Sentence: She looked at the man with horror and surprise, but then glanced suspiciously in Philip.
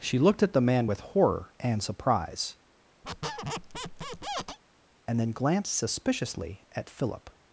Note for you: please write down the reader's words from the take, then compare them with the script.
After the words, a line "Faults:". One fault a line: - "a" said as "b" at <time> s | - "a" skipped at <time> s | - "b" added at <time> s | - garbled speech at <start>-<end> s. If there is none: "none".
She looked at the man with horror and surprise, and then glanced suspiciously at Philip.
Faults:
- "but" said as "and" at 5.1 s
- "in" said as "at" at 6.7 s